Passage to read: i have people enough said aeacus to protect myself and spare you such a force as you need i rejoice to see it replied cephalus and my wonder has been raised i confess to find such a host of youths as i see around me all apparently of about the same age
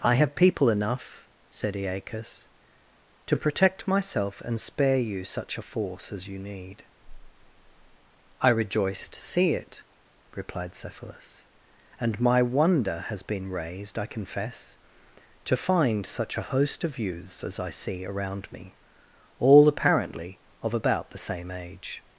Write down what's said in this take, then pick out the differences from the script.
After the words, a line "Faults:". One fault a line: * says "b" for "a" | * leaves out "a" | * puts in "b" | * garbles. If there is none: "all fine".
i have people enough said aeacus to protect myself and spare you such a force as you need i rejoice to see it replied cephalus and my wonder has been raised i confess to find such a host of youths as i see around me all apparently of about the same age
Faults:
all fine